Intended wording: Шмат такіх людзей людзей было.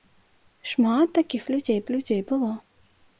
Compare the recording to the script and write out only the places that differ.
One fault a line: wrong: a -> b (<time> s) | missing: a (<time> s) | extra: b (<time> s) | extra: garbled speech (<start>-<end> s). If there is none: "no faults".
no faults